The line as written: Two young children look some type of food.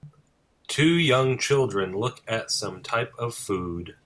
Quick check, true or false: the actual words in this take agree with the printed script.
false